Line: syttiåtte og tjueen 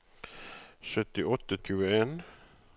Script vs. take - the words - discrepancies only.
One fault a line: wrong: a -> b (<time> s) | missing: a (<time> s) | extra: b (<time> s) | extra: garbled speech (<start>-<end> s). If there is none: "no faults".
no faults